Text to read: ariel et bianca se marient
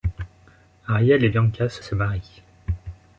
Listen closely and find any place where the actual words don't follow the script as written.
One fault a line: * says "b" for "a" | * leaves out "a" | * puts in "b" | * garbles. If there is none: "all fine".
* puts in "se"